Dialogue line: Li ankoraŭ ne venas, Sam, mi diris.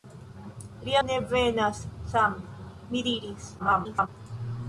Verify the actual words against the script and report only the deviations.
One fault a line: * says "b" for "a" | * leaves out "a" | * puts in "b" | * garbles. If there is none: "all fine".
* leaves out "ankoraŭ"
* garbles